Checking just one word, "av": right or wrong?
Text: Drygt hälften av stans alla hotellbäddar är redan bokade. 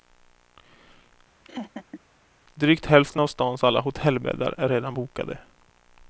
right